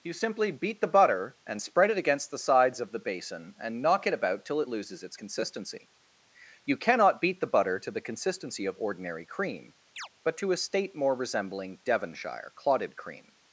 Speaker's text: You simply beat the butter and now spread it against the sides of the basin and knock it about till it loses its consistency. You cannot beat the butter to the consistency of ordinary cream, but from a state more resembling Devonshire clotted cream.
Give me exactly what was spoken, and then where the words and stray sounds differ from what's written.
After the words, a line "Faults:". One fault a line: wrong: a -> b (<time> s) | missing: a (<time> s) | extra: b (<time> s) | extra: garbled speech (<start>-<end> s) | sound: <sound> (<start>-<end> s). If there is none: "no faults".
You simply beat the butter and spread it against the sides of the basin and knock it about till it loses its consistency. You cannot beat the butter to the consistency of ordinary cream, but to a state more resembling Devonshire clotted cream.
Faults:
missing: now (1.6 s)
sound: chirp (10.0-10.1 s)
wrong: from -> to (10.4 s)